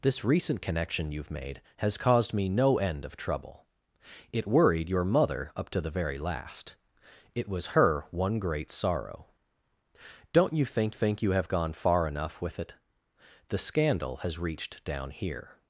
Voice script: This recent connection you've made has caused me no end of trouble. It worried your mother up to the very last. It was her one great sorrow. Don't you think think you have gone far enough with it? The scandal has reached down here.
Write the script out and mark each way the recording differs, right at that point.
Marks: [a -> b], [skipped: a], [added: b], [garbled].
This recent connection you've made has caused me no end of trouble. It worried your mother up to the very last. It was her one great sorrow. Don't you think think you have gone far enough with it? The scandal has reached down here.